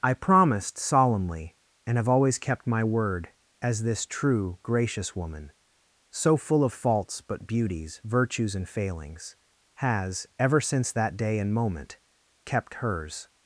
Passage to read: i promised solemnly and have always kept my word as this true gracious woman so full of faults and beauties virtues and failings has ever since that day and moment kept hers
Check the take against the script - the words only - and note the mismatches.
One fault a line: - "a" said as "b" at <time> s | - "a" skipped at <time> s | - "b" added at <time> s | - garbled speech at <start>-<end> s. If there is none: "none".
- "and" said as "but" at 7.2 s